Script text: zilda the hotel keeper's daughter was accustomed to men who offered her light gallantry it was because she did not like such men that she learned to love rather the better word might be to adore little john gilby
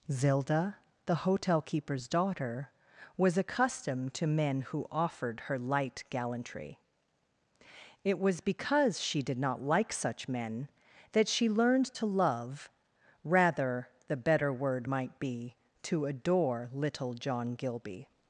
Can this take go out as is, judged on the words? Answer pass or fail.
pass